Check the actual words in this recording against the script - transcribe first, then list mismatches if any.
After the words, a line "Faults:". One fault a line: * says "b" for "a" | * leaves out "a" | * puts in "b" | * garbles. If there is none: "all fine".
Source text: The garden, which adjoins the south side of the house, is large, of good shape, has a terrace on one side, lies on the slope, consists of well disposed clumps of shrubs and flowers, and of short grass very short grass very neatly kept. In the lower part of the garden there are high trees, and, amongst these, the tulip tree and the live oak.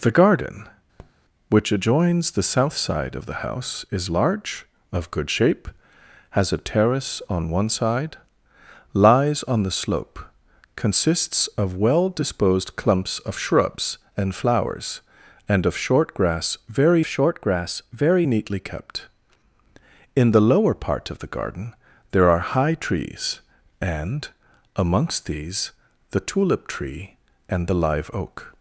The garden, which adjoins the south side of the house, is large, of good shape, has a terrace on one side, lies on the slope, consists of well disposed clumps of shrubs and flowers, and of short grass very short grass very neatly kept. In the lower part of the garden there are high trees, and, amongst these, the tulip tree and the live oak.
Faults:
all fine